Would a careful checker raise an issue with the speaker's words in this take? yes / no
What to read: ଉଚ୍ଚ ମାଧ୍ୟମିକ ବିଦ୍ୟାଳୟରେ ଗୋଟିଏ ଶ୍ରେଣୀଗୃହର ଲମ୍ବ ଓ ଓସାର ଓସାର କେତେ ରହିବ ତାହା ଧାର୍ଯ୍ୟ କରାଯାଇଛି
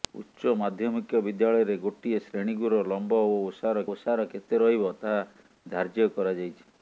no